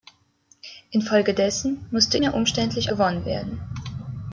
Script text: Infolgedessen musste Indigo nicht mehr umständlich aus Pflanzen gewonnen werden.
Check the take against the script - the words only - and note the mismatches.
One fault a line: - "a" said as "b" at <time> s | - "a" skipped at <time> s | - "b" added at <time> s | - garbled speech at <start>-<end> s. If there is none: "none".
- "Indigo nicht" skipped at 2.2 s
- "aus Pflanzen" skipped at 2.9 s